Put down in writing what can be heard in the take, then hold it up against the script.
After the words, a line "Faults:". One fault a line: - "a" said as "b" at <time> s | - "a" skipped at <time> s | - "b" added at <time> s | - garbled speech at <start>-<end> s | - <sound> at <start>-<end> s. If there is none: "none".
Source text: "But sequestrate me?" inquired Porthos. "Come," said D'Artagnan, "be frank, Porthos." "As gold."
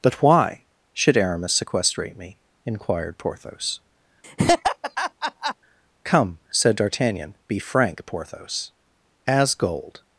"But why should Aramis sequestrate me?" inquired Porthos. "Come," said D'Artagnan, "be frank, Porthos." "As gold."
Faults:
- "why should Aramis" added at 0.2 s
- laugh at 4.2-5.5 s